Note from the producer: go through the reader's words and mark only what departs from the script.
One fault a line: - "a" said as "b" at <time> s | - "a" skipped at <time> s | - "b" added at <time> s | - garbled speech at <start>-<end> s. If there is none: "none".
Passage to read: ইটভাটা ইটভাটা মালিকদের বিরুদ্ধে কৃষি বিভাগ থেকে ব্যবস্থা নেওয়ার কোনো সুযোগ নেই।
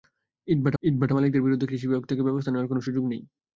none